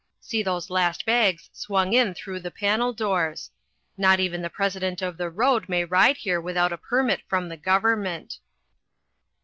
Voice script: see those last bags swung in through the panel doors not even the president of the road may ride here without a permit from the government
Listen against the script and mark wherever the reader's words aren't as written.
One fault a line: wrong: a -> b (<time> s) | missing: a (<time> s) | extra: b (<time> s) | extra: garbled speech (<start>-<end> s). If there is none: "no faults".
no faults